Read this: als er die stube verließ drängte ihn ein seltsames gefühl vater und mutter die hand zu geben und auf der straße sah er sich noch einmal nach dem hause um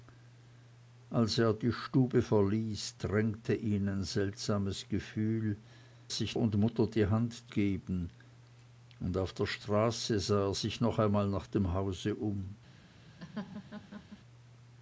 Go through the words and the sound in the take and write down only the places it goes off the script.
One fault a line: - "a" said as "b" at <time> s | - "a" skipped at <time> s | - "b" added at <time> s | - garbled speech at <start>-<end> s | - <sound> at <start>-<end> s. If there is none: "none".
- "vater" said as "sich" at 6.1 s
- "zu" skipped at 7.5 s
- laugh at 13.2-14.2 s